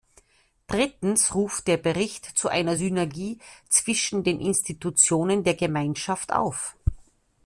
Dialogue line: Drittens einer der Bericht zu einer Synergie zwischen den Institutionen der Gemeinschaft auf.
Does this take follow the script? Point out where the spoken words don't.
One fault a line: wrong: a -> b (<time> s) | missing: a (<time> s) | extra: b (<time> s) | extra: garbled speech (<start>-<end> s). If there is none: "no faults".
wrong: einer -> ruft (1.4 s)